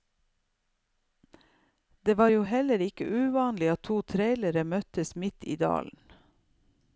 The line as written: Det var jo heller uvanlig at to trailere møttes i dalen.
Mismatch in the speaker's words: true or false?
true